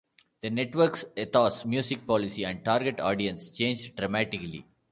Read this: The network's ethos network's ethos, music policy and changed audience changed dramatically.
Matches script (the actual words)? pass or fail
fail